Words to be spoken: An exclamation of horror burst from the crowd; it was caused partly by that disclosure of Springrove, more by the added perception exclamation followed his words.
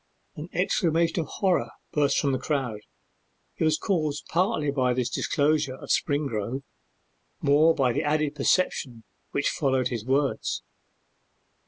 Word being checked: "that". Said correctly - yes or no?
no